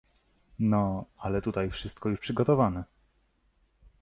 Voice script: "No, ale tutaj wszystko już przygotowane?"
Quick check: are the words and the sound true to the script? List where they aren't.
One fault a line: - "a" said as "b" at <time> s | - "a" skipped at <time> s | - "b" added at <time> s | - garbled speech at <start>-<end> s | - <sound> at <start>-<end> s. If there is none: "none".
none